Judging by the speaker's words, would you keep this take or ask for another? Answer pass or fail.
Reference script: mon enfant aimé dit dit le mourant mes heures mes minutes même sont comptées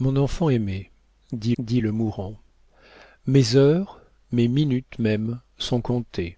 pass